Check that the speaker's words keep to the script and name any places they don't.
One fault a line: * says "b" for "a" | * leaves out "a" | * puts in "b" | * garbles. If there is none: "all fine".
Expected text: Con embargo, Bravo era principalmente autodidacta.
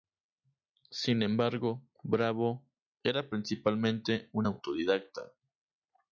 * says "Sin" for "Con"
* puts in "un"